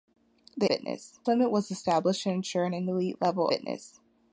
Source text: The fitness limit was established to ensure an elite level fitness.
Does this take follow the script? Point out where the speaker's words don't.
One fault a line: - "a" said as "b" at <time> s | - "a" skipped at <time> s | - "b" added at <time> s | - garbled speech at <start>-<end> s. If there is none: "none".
none